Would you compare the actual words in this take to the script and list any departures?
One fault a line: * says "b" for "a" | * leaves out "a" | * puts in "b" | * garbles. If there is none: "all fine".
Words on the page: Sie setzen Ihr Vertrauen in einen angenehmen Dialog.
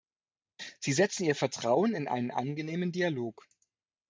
all fine